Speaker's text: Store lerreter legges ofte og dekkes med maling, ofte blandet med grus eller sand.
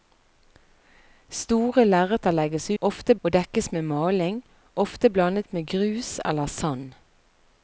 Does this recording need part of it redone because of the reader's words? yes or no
no